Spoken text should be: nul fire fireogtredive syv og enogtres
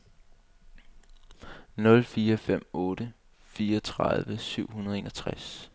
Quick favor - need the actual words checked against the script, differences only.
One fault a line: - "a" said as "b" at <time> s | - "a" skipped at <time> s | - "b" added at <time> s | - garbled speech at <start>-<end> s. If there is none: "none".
- "fem otte" added at 2.4 s
- "hundrede" added at 4.7 s